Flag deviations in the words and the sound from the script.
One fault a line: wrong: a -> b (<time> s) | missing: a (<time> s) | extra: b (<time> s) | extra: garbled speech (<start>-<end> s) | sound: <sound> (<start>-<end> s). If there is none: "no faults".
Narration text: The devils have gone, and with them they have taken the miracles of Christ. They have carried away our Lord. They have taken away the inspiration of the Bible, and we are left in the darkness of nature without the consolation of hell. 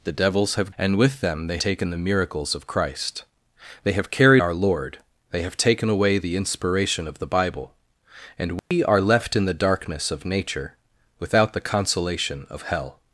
missing: gone (0.7 s)
missing: have (1.6 s)
missing: away (4.4 s)
sound: dropout (8.6-8.7 s)